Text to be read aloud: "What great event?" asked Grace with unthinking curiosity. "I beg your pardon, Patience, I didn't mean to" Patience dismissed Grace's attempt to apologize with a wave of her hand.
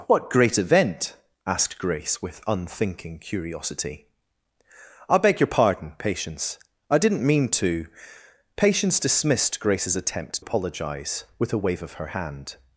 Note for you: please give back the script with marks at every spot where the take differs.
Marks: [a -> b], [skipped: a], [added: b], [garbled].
"What great event?" asked Grace with unthinking curiosity. "I beg your pardon, Patience, I didn't mean to" Patience dismissed Grace's attempt [skipped: to] apologize with a wave of her hand.